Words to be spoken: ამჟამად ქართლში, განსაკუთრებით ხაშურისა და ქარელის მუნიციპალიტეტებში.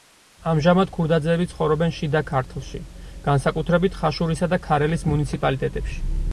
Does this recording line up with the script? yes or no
no